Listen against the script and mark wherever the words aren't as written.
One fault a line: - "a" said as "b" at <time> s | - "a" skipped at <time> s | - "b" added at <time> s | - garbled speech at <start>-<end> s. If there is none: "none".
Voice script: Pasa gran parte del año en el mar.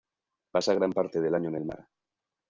none